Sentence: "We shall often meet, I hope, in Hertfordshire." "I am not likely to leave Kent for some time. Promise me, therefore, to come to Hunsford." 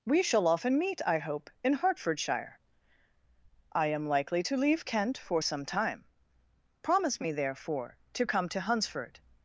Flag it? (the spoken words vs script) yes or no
yes